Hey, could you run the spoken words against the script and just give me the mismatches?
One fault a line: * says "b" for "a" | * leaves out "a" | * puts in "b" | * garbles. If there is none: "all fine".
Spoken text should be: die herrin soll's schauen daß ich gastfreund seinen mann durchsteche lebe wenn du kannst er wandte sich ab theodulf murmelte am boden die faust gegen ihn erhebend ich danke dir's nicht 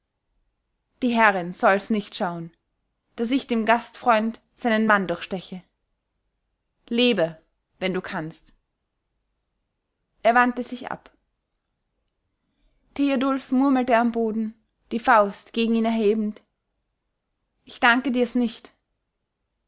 * puts in "nicht"
* puts in "dem"